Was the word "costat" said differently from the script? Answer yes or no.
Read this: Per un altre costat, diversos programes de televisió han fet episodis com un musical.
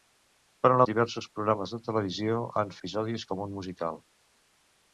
yes